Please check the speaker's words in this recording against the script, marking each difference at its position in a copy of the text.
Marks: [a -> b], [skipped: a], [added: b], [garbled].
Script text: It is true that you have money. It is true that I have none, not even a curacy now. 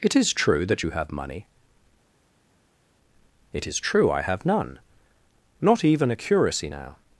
It is true that you have money. It is true [skipped: that] I have none, not even a curacy now.